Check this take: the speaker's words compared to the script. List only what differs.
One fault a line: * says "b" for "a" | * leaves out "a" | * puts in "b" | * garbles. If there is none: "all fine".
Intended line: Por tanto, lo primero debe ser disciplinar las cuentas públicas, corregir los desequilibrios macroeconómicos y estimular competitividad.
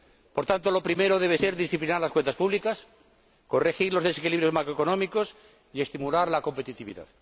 * puts in "la"